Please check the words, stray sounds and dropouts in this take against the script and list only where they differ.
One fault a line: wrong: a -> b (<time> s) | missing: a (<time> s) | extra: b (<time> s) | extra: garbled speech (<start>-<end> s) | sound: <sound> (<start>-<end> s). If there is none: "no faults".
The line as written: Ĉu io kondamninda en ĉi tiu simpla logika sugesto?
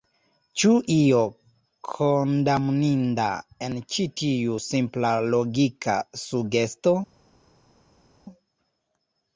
no faults